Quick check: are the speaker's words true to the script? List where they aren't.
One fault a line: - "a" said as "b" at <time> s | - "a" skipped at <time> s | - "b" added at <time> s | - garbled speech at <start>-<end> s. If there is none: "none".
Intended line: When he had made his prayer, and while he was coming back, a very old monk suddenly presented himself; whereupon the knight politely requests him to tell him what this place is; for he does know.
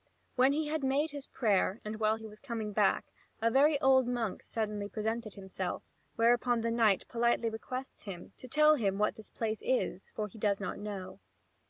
- "not" added at 10.6 s